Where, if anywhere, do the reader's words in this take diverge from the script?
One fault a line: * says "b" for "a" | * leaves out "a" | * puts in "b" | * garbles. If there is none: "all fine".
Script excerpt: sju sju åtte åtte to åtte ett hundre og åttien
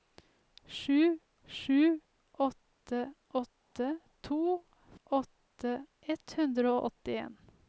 all fine